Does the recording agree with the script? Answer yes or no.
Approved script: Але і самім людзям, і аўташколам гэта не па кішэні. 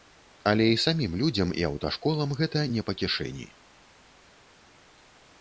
yes